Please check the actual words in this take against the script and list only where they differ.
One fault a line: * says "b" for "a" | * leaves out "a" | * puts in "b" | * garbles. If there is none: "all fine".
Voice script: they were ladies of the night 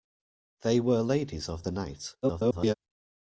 * garbles